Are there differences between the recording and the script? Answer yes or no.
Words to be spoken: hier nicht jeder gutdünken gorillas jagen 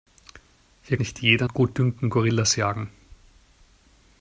no